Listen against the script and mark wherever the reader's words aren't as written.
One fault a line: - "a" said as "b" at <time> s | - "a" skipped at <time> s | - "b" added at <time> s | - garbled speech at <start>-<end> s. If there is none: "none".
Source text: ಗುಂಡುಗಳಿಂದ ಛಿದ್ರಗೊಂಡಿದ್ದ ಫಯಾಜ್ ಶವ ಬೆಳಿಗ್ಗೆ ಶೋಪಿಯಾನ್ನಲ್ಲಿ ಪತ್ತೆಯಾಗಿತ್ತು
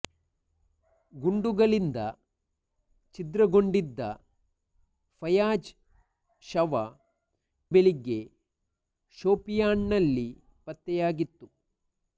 none